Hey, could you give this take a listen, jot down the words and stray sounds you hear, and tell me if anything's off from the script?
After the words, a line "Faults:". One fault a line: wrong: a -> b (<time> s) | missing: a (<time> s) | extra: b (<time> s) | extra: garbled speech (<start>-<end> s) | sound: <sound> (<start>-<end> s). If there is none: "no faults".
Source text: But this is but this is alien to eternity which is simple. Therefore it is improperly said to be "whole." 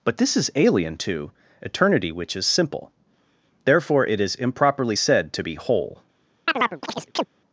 But this is alien to eternity which is simple. Therefore it is improperly said to be "whole."
Faults:
missing: but this is (0.5 s)
sound: chirp (6.5-7.3 s)